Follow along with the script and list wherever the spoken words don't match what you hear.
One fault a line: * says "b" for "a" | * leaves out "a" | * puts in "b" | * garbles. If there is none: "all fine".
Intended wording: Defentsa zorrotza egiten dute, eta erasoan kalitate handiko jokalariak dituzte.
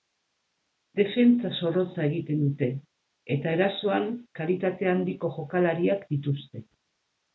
all fine